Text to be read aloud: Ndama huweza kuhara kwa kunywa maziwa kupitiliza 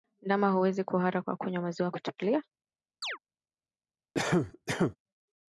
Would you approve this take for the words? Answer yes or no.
yes